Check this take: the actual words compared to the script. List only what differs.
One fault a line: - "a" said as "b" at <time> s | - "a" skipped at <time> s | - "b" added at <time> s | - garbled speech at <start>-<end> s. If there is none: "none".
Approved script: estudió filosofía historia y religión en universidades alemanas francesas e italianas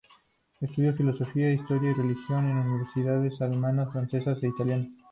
none